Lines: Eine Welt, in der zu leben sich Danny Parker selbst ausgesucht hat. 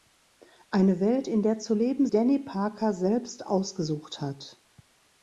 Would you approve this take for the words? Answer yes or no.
no